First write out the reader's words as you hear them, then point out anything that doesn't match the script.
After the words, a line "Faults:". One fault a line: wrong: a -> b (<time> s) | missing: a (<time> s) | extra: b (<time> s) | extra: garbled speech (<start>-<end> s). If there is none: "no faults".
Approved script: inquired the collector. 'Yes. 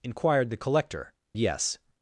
inquired the collector. 'Yes.
Faults:
no faults